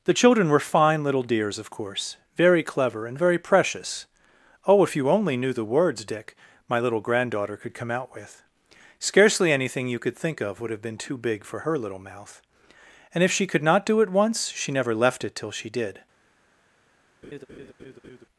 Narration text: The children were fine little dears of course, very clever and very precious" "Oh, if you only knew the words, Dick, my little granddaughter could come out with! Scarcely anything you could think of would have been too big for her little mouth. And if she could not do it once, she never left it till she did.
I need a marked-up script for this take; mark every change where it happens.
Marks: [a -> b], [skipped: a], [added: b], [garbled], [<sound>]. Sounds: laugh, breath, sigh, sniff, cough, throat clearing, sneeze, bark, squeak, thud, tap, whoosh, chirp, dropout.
The children were fine little dears of course, very clever and very precious" "Oh, if you only knew the words, Dick, my little granddaughter could come out with! Scarcely anything you could think of would have been too big for her little mouth. And if she could not do it once, she never left it till she did. [laugh]